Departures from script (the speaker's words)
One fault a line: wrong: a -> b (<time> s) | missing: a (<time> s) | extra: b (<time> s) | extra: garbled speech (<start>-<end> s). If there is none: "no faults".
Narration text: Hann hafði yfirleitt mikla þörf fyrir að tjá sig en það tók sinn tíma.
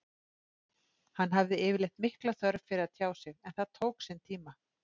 no faults